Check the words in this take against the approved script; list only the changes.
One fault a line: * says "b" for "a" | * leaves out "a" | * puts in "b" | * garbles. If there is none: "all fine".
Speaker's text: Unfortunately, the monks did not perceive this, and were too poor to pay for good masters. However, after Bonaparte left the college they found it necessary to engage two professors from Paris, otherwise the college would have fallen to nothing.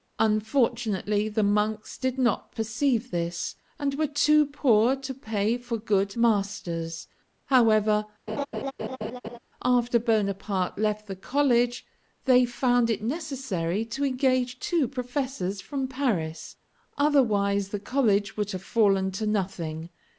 all fine